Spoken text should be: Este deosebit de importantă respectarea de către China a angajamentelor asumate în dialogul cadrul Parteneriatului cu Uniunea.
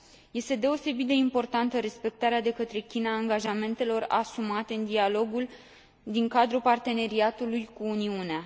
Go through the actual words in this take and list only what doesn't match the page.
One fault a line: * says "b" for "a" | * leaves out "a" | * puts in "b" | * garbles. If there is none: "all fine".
* puts in "din"